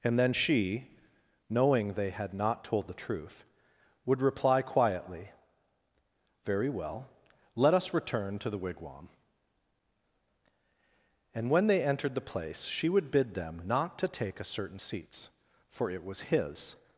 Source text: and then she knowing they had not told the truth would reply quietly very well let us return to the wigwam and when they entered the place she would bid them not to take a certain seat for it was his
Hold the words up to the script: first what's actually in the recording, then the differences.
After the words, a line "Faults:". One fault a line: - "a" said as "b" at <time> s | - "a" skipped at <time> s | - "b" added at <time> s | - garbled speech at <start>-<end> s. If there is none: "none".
and then she knowing they had not told the truth would reply quietly very well let us return to the wigwam and when they entered the place she would bid them not to take a certain seats for it was his
Faults:
- "seat" said as "seats" at 14.8 s